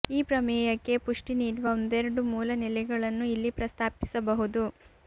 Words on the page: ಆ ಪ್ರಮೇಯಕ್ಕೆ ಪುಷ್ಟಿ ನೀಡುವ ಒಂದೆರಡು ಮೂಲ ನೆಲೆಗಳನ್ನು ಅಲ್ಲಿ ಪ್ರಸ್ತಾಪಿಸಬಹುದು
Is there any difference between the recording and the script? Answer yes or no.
yes